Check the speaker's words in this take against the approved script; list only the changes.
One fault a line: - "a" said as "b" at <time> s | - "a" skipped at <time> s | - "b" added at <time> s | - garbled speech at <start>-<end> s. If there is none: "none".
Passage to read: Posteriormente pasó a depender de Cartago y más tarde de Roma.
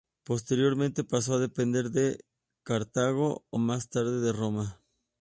none